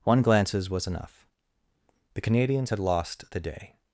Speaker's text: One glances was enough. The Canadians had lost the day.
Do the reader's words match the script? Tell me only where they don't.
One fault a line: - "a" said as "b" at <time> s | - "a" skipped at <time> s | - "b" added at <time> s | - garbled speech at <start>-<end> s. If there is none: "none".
none